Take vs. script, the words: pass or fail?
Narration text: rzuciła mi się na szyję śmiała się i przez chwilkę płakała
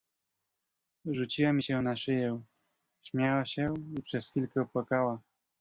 pass